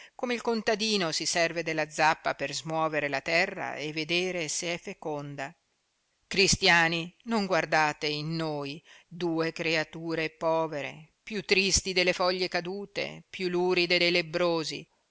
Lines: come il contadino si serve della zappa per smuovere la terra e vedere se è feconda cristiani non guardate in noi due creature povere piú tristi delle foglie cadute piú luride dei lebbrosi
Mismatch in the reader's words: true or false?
false